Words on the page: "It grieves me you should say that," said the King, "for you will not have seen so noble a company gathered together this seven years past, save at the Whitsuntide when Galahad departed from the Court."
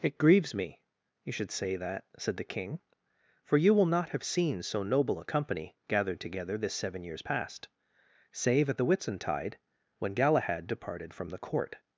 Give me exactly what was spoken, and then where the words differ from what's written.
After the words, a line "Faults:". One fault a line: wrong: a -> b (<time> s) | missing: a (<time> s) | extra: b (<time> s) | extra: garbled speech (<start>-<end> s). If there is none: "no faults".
"It grieves me you should say that," said the King, "for you will not have seen so noble a company gathered together this seven years past, save at the Whitsuntide when Galahad departed from the Court."
Faults:
no faults